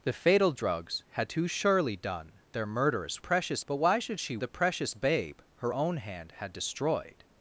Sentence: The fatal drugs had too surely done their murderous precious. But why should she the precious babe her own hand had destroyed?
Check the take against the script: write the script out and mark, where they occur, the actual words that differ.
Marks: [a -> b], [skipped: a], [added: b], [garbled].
The fatal drugs had too surely done their murderous precious. But why should she the precious babe her own hand had destroyed?